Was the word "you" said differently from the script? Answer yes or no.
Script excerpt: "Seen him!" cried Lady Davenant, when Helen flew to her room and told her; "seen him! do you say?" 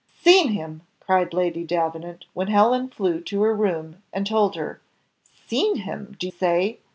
yes